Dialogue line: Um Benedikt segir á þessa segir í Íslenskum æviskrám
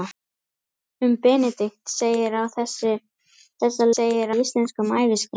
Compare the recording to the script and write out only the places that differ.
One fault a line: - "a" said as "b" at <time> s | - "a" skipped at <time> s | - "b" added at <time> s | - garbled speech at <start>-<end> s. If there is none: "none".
none